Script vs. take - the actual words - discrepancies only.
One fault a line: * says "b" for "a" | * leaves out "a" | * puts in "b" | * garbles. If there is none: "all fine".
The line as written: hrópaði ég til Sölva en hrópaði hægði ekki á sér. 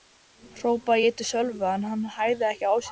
* says "hann" for "hrópaði"